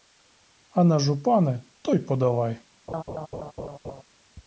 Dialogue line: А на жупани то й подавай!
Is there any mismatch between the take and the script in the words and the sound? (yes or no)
yes